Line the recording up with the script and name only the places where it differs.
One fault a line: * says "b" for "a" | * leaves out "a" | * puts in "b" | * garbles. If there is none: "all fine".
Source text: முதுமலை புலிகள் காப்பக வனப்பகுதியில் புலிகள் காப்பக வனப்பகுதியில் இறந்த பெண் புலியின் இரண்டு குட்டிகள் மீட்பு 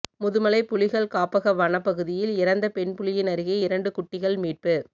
* leaves out "புலிகள் காப்பக வனப்பகுதியில்"
* puts in "அருகே"